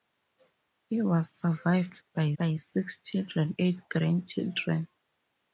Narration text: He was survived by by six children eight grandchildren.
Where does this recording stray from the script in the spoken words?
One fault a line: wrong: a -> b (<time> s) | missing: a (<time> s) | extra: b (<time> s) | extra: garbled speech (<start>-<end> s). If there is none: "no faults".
no faults